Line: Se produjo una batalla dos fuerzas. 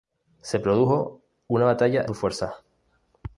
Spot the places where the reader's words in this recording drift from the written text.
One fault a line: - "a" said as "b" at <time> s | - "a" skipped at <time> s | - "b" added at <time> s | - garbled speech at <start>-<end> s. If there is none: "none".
none